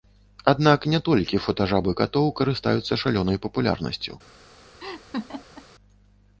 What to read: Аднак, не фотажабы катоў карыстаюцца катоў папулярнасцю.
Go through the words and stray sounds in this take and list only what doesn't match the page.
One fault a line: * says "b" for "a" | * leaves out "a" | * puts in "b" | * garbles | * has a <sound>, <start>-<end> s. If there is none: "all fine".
* puts in "толькі"
* says "шалёнай" for "катоў"
* has a laugh, 4.8-5.7 s